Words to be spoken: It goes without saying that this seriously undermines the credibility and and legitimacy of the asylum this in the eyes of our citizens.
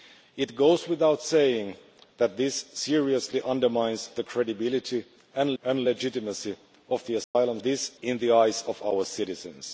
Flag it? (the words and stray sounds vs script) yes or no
yes